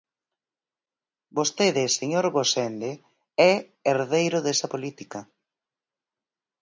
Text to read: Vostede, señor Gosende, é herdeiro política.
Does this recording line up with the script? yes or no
no